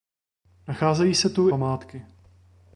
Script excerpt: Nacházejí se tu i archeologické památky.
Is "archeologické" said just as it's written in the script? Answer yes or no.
no